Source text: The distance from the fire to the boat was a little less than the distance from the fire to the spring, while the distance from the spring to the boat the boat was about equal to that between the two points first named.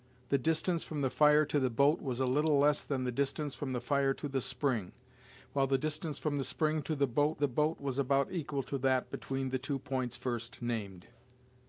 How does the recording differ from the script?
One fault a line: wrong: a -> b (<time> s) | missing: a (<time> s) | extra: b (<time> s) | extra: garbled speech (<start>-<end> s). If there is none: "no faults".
no faults